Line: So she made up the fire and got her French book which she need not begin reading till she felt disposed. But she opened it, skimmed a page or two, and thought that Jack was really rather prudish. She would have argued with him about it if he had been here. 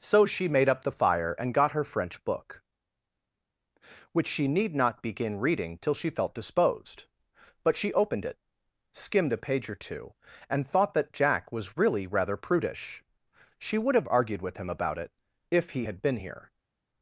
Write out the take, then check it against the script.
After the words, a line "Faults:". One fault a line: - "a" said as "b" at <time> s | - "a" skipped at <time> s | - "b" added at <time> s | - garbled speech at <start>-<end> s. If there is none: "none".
So she made up the fire and got her French book which she need not begin reading till she felt disposed. But she opened it, skimmed a page or two, and thought that Jack was really rather prudish. She would have argued with him about it if he had been here.
Faults:
none